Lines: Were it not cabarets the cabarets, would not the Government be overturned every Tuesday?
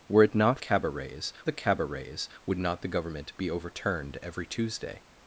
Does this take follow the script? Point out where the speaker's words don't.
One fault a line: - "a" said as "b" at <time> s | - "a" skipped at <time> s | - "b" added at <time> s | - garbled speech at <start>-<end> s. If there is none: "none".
none